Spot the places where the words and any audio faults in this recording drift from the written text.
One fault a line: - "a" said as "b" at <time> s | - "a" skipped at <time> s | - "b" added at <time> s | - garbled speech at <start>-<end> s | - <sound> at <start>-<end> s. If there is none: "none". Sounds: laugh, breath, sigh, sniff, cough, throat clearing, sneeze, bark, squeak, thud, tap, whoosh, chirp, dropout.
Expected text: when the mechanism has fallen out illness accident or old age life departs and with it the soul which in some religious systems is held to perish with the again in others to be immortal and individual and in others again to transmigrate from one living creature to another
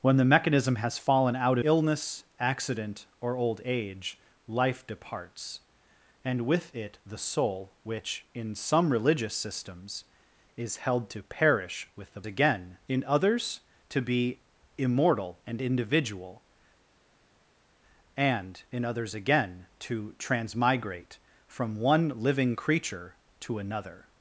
none